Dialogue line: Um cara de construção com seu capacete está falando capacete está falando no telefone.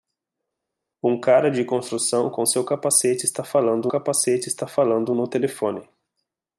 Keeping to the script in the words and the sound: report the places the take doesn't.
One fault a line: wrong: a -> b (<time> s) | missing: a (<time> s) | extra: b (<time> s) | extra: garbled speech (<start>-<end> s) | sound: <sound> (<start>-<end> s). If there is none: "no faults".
no faults